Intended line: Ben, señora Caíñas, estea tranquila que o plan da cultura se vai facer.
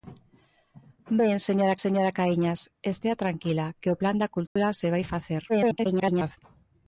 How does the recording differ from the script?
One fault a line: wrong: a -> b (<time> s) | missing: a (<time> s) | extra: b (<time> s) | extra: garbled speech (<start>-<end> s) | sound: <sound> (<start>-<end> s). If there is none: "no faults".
extra: señora (1.8 s)
sound: dropout (4.5-4.6 s)
extra: garbled speech (5.5-6.4 s)